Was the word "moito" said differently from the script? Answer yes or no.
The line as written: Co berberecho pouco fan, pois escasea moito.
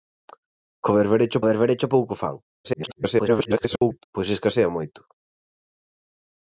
no